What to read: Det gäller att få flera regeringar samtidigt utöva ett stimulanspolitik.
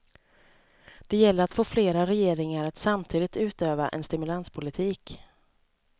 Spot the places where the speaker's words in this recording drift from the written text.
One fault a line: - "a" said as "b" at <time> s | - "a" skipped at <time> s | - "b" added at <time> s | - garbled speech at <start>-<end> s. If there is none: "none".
- "att" added at 2.7 s
- "ett" said as "en" at 3.9 s